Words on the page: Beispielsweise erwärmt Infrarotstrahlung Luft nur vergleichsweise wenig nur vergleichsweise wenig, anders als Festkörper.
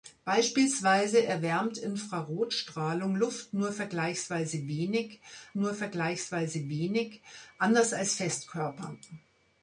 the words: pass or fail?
pass